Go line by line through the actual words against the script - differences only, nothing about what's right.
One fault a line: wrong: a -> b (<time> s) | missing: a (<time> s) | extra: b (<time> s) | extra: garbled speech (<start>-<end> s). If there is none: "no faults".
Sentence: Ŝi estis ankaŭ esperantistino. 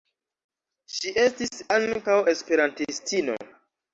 no faults